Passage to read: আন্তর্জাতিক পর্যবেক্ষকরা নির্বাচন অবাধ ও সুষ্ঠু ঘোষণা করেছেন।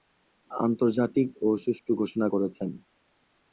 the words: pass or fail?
fail